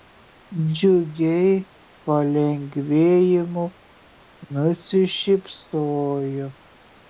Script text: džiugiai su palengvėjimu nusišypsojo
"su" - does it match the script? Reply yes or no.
no